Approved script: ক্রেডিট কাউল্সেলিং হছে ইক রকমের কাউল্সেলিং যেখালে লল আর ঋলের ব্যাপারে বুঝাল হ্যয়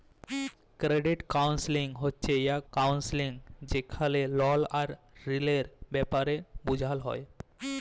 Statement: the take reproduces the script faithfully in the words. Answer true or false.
false